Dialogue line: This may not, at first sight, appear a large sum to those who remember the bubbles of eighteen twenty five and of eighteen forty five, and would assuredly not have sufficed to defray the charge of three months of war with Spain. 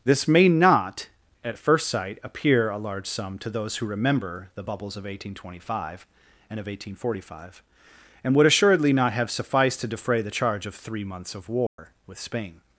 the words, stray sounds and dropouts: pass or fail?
fail